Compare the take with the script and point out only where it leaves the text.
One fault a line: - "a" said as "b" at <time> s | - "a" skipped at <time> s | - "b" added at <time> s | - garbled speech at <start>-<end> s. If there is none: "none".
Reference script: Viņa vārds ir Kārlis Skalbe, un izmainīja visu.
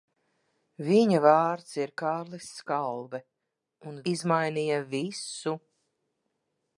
none